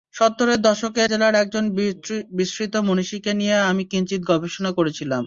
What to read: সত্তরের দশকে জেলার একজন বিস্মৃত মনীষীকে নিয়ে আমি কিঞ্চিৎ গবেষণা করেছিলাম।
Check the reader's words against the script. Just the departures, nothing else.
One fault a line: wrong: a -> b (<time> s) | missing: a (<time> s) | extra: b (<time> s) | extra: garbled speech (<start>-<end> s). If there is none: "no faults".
no faults